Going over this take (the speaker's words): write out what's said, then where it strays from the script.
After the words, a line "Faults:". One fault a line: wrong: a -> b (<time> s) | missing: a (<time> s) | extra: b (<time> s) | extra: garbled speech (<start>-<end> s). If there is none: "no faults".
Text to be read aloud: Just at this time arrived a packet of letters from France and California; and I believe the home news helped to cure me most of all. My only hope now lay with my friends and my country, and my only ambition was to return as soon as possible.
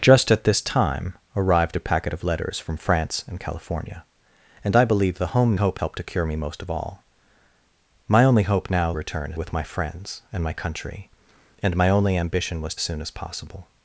Just at this time arrived a packet of letters from France and California; and I believe the home hope helped to cure me most of all. My only hope now return with my friends and my country, and my only ambition was as soon as possible.
Faults:
wrong: news -> hope (5.5 s)
wrong: lay -> return (8.9 s)
missing: to return (12.7 s)